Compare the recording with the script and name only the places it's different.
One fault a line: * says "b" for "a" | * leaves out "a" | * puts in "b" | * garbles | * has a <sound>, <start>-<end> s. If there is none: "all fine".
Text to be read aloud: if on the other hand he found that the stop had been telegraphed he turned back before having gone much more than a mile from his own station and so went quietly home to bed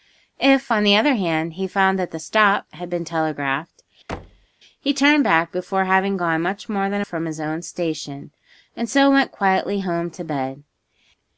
* has a thud, 4.1-4.5 s
* leaves out "mile"